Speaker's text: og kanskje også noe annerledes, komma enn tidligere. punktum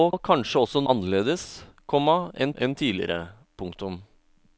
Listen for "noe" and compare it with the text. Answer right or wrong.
wrong